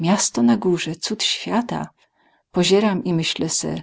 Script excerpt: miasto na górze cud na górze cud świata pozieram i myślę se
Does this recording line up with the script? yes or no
no